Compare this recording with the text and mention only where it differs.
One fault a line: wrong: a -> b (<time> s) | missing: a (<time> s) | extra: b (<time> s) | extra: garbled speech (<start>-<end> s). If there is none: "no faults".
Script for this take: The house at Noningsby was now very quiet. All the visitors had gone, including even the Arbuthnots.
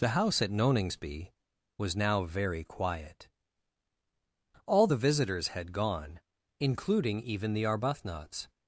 no faults